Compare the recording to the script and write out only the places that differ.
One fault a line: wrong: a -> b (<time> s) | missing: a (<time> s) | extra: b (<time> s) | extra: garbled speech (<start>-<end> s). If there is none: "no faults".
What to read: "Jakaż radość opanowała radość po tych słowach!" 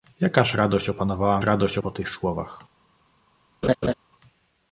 no faults